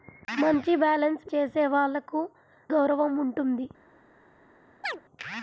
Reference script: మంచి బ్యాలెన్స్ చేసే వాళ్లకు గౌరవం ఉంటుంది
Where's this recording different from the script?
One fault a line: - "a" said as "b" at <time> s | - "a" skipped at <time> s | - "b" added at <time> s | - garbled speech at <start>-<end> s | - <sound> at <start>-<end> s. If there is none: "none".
- chirp at 4.8-5.0 s